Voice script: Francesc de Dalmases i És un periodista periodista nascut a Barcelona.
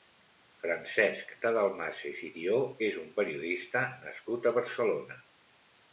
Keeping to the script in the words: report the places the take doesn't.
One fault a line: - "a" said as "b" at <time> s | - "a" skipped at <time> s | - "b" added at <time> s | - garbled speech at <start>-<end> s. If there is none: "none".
- "Thió" added at 2.3 s
- "periodista" skipped at 3.9 s